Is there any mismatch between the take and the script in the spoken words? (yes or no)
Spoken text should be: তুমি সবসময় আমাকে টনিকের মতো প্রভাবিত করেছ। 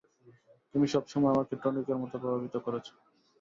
no